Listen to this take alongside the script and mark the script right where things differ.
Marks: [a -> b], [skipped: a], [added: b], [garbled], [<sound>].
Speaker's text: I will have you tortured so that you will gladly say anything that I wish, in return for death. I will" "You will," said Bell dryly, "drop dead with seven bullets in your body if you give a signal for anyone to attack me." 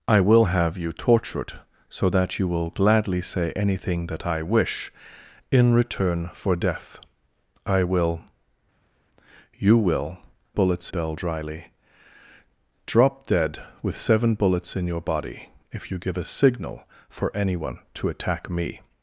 I will have you tortured so that you will gladly say anything that I wish, in return for death. I will" "You will," [said -> bullets] Bell dryly, "drop dead with seven bullets in your body if you give a signal for anyone to attack me."